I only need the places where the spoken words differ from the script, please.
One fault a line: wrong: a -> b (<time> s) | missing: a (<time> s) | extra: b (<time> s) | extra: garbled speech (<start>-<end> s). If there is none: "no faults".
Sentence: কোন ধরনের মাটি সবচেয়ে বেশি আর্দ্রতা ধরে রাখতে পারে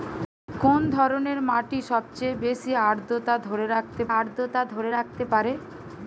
extra: আর্দ্রতা ধরে রাখতে (4.2 s)